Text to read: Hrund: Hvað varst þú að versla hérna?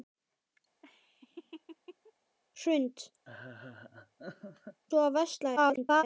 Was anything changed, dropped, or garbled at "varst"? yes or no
yes